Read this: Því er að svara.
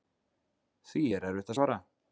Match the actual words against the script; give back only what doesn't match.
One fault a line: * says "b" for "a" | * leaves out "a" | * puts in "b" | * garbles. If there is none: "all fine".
* puts in "erfitt"